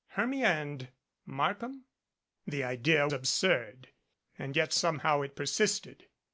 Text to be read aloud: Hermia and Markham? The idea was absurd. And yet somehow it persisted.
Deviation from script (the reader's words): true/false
true